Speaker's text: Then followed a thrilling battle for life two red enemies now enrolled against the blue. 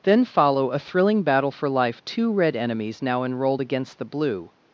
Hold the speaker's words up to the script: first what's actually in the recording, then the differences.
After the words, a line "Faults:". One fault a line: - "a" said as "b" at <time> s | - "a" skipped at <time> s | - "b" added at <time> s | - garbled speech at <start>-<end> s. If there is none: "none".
Then follow a thrilling battle for life two red enemies now enrolled against the blue.
Faults:
- "followed" said as "follow" at 0.2 s